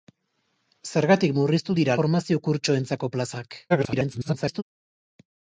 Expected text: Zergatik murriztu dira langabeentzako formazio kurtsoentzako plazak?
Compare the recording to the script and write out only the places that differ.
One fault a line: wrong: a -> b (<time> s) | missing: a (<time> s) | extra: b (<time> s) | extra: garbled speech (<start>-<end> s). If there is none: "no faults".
missing: langabeentzako (2.0 s)
extra: garbled speech (3.7-4.6 s)